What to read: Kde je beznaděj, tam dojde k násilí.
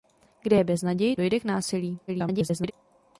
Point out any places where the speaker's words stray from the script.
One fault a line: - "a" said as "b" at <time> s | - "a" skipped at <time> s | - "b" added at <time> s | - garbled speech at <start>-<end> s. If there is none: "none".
- "tam" skipped at 1.2 s
- garbled speech at 2.1-2.7 s